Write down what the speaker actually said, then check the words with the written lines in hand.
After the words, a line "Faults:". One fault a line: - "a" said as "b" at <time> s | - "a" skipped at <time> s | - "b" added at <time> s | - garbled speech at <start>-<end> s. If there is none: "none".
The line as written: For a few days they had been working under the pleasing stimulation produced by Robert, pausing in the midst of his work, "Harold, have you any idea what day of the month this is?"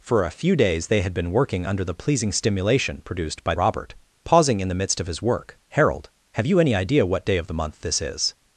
For a few days they had been working under the pleasing stimulation produced by Robert, pausing in the midst of his work, "Harold, have you any idea what day of the month this is?"
Faults:
none